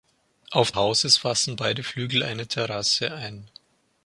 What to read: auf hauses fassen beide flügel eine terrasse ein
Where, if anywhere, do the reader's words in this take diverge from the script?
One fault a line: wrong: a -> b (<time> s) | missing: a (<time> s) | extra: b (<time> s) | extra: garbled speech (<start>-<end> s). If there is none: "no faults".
no faults